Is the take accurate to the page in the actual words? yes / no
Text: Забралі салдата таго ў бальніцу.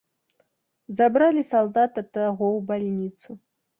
yes